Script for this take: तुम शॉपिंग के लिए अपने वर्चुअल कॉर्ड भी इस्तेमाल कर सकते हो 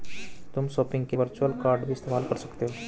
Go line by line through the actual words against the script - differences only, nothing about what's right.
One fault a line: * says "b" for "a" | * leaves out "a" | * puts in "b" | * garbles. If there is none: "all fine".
* leaves out "लिए अपने"